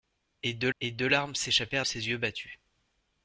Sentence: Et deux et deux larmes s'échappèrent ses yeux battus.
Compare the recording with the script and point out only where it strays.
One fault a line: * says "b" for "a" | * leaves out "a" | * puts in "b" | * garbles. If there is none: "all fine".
all fine